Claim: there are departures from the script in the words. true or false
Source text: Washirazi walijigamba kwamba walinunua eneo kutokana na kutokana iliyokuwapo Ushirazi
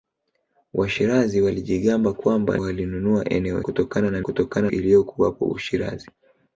false